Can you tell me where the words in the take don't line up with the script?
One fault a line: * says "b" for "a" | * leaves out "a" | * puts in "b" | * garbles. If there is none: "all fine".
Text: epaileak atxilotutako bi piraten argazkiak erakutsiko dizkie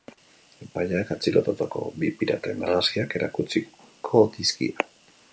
all fine